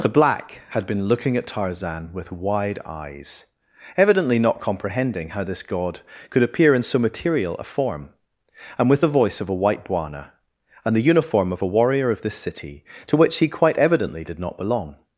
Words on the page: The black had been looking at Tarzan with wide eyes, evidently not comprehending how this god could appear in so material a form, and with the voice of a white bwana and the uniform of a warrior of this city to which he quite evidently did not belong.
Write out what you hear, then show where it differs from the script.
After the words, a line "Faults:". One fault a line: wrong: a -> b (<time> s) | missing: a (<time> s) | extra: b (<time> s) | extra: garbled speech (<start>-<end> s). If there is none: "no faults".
The black had been looking at Tarzan with wide eyes, evidently not comprehending how this god could appear in so material a form, and with the voice of a white bwana and the uniform of a warrior of this city to which he quite evidently did not belong.
Faults:
no faults